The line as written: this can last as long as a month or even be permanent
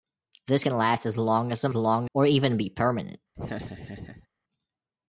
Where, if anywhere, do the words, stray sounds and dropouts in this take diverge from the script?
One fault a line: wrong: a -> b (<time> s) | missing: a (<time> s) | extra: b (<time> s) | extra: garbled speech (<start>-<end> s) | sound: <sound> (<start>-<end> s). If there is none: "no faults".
wrong: month -> long (1.7 s)
sound: laugh (3.4-4.3 s)